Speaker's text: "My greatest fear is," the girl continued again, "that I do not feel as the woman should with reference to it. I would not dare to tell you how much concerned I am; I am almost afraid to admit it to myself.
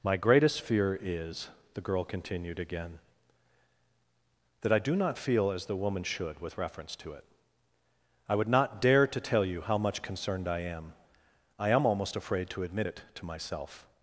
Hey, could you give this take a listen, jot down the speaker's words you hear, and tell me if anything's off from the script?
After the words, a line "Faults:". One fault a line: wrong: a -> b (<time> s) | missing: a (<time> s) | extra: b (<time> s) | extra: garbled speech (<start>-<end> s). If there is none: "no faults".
"My greatest fear is," the girl continued again, "that I do not feel as the woman should with reference to it. I would not dare to tell you how much concerned I am; I am almost afraid to admit it to myself.
Faults:
no faults